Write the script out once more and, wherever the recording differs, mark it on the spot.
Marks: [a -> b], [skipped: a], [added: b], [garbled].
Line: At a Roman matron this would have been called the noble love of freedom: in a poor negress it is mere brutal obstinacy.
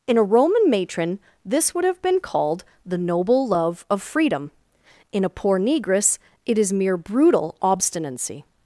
[At -> In] a Roman matron this would have been called the noble love of freedom: in a poor negress it is mere brutal obstinacy.